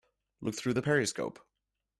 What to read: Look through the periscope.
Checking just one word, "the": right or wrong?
right